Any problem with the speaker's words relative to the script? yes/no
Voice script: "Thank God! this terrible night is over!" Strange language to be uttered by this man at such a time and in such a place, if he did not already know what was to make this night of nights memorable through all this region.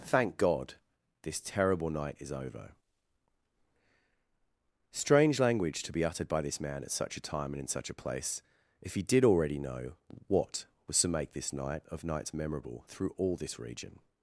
yes